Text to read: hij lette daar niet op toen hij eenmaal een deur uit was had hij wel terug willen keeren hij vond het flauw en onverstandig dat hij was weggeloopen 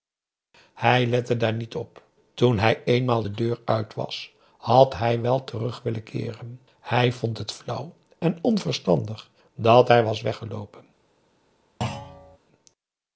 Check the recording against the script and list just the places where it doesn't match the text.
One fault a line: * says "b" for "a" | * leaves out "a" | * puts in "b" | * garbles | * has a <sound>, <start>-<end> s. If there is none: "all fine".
* says "de" for "een"
* has a thud, 11.8-12.4 s